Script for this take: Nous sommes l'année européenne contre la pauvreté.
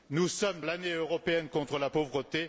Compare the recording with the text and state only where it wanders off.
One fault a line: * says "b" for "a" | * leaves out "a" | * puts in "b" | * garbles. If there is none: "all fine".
all fine